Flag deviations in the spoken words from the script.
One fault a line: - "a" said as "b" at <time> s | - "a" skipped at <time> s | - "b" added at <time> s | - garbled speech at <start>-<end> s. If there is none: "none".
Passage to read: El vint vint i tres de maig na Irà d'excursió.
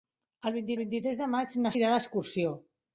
none